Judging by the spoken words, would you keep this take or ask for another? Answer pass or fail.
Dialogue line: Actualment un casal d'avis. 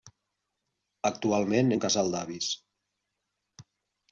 pass